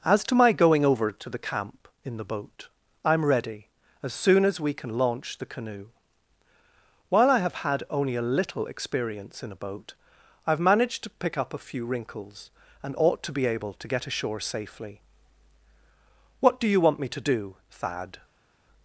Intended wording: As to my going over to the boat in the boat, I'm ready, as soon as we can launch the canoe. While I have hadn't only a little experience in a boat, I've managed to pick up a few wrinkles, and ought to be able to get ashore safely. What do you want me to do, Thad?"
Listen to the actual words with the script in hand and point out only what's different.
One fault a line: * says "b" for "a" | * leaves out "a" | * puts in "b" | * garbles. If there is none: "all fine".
* says "camp" for "boat"
* says "had" for "hadn't"